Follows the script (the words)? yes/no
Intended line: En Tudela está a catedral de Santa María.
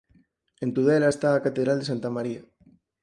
yes